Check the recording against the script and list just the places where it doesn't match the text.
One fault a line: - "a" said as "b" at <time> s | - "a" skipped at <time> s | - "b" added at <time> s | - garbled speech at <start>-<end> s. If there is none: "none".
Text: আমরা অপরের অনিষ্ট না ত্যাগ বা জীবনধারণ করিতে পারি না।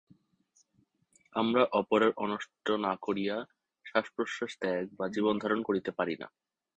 - "করিয়া শ্বাসপ্রশ্বাস" added at 3.0 s